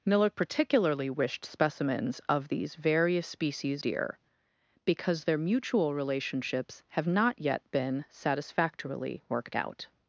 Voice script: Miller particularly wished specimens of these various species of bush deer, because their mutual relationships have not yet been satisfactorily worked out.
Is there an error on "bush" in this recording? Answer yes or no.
yes